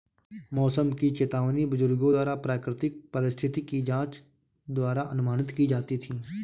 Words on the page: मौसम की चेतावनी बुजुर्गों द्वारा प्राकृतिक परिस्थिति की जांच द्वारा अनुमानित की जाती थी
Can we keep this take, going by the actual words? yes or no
yes